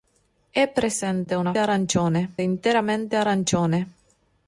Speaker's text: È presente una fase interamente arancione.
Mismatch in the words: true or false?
true